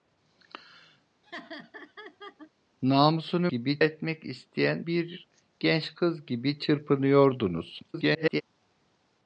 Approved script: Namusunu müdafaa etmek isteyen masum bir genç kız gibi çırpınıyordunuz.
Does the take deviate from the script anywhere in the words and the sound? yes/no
yes